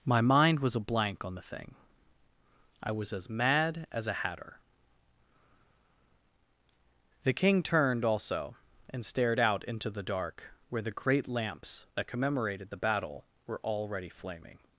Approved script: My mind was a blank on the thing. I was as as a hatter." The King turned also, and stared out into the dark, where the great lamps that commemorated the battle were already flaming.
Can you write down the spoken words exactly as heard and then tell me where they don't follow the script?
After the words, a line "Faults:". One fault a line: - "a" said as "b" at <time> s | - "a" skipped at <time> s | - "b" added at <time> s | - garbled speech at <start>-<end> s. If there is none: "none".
My mind was a blank on the thing. I was as mad as a hatter." The King turned also, and stared out into the dark, where the great lamps that commemorated the battle were already flaming.
Faults:
- "mad" added at 3.3 s